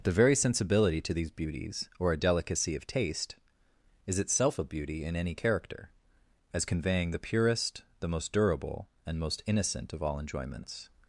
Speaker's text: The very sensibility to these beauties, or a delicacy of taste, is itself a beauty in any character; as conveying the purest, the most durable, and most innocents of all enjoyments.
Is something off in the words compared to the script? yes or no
yes